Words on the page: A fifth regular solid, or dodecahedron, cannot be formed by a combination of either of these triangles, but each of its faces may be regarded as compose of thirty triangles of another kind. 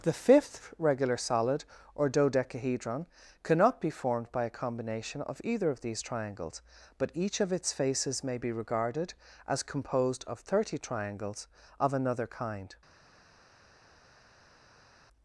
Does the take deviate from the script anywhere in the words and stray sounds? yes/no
yes